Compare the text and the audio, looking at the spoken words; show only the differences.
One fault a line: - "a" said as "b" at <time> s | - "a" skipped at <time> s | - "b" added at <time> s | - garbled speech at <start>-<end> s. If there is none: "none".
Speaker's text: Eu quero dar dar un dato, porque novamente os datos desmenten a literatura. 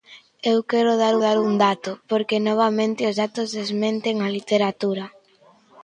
none